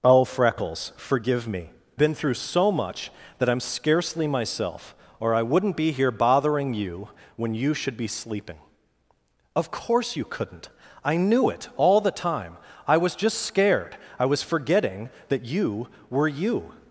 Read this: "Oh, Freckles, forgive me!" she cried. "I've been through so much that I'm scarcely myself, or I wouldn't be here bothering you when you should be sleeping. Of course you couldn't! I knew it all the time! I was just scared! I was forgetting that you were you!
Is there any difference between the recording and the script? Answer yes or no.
yes